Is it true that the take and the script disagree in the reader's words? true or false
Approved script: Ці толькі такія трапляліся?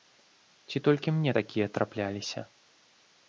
true